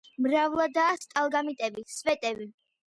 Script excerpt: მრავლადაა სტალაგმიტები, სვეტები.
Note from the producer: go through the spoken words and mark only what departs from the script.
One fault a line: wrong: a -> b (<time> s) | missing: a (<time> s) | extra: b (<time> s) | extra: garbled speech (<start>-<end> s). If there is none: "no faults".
no faults